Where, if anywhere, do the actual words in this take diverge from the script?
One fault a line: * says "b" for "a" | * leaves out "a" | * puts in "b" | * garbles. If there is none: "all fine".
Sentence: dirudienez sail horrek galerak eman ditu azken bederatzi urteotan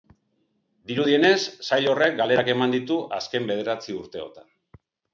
all fine